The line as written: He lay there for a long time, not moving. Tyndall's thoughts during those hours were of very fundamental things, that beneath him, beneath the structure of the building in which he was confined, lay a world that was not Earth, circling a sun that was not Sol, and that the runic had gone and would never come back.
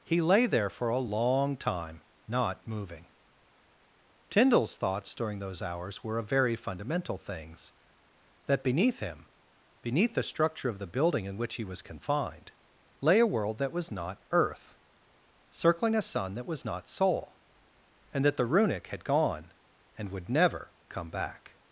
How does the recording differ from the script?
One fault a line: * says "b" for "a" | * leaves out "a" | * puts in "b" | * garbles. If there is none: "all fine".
all fine